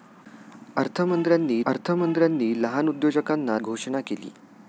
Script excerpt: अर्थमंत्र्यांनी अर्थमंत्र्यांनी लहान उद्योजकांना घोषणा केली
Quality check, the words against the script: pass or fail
pass